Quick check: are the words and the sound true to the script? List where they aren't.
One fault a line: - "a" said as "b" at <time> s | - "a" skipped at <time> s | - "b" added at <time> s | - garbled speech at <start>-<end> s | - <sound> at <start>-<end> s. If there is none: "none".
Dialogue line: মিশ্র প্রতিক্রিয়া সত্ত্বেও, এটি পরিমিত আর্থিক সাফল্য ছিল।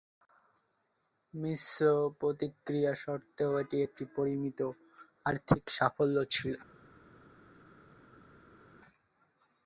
- "একটি" added at 3.9 s